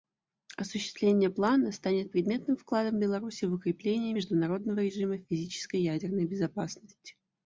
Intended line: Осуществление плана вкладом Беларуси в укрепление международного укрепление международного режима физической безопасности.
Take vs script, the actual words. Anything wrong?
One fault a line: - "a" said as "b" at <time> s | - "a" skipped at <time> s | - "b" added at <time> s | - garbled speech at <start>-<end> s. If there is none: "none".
- "станет предметным" added at 1.7 s
- "укрепление международного" skipped at 4.8 s
- "ядерной" added at 5.8 s